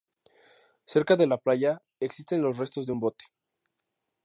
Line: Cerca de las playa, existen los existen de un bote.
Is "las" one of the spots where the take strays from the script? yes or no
yes